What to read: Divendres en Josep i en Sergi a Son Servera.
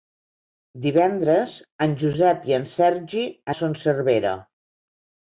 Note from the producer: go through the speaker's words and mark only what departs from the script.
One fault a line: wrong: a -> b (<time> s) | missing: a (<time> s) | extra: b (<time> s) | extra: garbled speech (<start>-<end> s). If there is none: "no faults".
no faults